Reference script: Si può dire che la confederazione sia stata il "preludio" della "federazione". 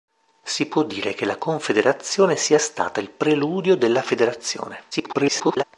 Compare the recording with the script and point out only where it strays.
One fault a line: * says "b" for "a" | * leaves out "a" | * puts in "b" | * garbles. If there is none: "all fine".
* garbles